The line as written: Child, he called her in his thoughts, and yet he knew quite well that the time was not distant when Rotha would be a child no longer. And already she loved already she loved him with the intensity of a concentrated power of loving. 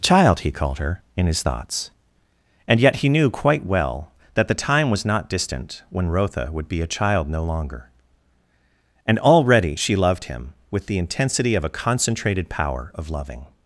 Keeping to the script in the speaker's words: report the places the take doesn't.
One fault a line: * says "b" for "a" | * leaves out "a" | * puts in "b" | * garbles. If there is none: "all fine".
* leaves out "already she loved"